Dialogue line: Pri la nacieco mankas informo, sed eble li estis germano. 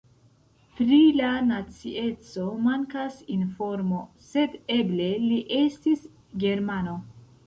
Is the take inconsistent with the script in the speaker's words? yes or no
no